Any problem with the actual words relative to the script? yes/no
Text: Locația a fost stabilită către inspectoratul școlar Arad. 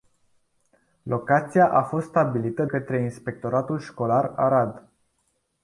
no